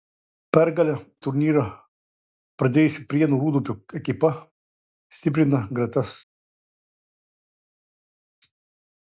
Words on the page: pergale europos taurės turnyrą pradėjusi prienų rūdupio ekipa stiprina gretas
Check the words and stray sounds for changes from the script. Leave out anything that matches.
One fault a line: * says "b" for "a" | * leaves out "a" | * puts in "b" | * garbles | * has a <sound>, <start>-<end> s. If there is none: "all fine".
* leaves out "europos taurės"